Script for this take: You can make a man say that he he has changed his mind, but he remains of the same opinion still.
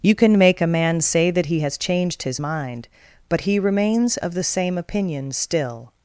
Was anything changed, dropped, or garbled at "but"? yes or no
no